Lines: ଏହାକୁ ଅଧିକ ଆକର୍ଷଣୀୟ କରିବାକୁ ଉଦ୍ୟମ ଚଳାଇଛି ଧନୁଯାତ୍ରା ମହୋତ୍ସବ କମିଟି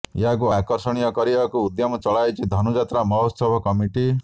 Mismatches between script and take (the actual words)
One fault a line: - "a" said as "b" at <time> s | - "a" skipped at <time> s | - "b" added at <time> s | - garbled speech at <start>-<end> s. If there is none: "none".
- "ଅଧିକ" skipped at 0.5 s